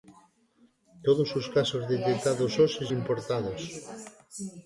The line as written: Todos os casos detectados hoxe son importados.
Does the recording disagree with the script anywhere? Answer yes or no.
yes